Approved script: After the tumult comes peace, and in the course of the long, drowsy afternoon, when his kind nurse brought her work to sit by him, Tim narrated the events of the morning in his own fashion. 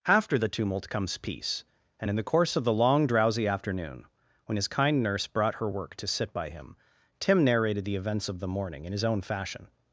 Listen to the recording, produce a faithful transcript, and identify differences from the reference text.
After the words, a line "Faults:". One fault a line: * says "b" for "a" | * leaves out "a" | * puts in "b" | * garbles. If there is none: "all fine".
After the tumult comes peace, and in the course of the long, drowsy afternoon, when his kind nurse brought her work to sit by him, Tim narrated the events of the morning in his own fashion.
Faults:
all fine